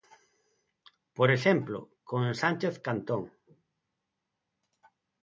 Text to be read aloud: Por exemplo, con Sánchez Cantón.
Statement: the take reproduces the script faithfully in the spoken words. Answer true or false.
true